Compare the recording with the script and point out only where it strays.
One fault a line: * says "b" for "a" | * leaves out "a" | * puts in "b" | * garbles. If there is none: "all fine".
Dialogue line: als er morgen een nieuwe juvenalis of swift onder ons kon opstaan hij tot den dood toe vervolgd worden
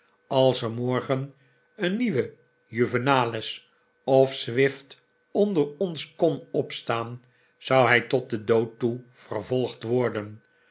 * puts in "zou"